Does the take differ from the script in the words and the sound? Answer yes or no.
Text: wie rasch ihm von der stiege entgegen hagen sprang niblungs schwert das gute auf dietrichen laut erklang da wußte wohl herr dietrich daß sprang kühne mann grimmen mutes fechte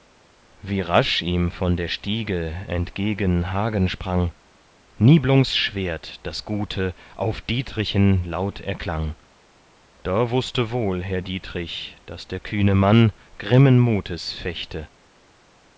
yes